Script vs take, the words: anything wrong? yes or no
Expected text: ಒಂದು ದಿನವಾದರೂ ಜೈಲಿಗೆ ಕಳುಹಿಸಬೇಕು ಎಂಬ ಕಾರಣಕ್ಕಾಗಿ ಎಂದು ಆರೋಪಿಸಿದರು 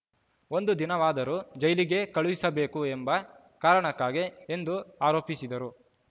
no